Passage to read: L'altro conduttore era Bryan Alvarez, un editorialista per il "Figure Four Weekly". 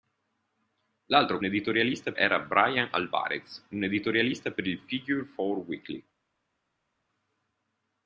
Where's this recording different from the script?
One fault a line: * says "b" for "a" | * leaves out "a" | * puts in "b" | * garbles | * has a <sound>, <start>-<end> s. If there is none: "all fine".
* says "editorialista" for "conduttore"